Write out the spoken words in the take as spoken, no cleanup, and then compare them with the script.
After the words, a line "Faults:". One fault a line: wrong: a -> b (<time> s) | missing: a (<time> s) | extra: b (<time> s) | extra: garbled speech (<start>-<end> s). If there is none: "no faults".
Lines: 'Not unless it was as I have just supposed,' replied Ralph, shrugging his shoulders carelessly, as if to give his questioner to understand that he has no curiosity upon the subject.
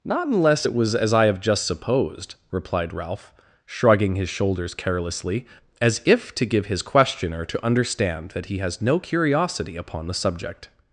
'Not unless it was as I have just supposed,' replied Ralph, shrugging his shoulders carelessly, as if to give his questioner to understand that he has no curiosity upon the subject.
Faults:
no faults